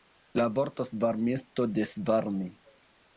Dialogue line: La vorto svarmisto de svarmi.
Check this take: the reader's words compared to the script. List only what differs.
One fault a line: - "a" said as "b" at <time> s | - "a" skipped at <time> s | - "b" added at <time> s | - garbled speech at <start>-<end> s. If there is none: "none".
none